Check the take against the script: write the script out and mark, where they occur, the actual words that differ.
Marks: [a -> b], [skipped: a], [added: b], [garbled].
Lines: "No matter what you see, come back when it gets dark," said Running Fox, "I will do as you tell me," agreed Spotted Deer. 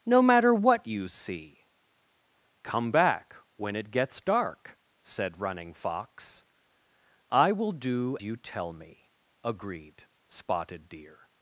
"No matter what you see, come back when it gets dark," said Running Fox, "I will do [skipped: as] you tell me," agreed Spotted Deer.